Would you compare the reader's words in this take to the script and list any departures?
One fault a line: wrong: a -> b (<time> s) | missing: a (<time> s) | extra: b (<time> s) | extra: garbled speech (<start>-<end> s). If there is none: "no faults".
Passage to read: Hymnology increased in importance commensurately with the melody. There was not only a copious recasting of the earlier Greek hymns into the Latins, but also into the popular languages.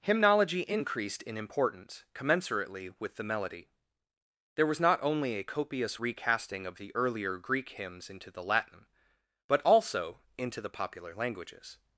wrong: Latins -> Latin (8.4 s)